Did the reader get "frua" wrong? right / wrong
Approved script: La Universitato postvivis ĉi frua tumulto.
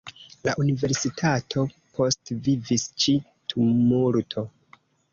wrong